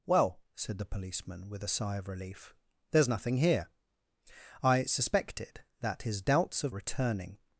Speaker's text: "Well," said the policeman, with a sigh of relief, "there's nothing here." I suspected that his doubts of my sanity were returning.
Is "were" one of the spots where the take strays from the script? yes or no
yes